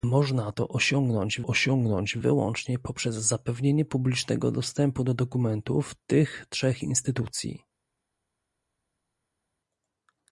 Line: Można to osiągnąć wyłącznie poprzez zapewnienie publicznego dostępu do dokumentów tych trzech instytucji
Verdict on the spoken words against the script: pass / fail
fail